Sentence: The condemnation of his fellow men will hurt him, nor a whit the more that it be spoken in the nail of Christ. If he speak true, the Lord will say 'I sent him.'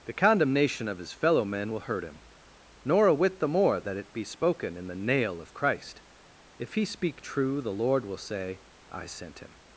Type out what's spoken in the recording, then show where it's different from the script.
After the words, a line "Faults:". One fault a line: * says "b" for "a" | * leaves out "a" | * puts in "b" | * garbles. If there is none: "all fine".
The condemnation of his fellow men will hurt him, nor a whit the more that it be spoken in the nail of Christ. If he speak true, the Lord will say 'I sent him.'
Faults:
all fine